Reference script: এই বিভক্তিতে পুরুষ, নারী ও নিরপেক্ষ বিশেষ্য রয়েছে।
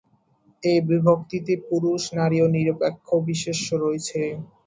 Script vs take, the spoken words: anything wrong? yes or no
no